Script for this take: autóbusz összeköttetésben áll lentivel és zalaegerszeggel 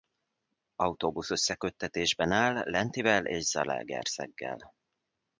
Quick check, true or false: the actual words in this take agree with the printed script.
true